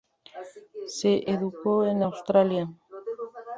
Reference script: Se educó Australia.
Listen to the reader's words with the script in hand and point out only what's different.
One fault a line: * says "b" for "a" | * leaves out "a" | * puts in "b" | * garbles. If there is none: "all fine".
* puts in "en"